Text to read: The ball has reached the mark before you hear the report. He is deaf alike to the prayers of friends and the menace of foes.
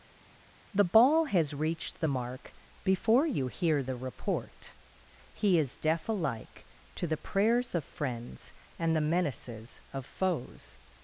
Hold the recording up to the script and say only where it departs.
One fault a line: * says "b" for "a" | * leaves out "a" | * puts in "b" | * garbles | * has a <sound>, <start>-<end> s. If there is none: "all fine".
* says "menaces" for "menace"